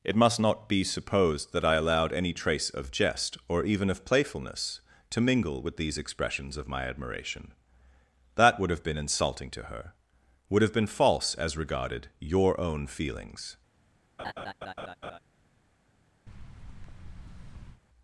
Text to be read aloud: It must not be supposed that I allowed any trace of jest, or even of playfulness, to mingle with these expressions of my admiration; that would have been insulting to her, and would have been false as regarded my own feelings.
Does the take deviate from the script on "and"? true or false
true